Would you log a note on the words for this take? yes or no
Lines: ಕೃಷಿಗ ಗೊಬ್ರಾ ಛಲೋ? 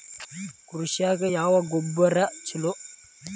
yes